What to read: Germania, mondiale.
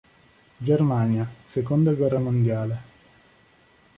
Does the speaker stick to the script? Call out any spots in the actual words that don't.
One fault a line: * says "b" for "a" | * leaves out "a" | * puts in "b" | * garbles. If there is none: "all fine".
* puts in "seconda guerra"